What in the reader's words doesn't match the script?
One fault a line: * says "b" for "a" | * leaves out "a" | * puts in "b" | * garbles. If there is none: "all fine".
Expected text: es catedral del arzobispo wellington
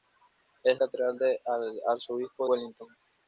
all fine